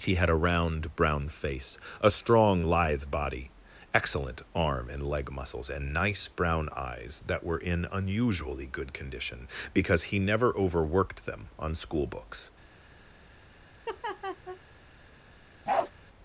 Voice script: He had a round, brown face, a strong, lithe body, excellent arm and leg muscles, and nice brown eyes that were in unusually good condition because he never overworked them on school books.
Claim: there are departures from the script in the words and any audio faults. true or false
true